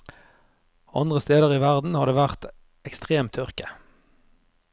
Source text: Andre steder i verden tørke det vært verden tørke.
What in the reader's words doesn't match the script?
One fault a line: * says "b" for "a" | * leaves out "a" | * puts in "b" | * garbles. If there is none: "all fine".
* says "har" for "tørke"
* says "ekstrem" for "verden"